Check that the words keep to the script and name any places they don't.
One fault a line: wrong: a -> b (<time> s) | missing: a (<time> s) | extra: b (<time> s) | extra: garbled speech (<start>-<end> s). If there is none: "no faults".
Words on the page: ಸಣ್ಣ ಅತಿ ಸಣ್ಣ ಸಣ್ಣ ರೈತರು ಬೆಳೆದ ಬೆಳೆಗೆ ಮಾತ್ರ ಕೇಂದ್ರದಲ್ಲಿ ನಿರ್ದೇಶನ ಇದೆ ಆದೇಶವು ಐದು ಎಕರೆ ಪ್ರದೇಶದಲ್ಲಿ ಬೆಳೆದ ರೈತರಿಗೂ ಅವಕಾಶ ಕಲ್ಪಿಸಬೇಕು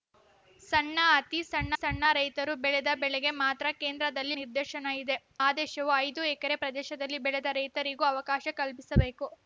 no faults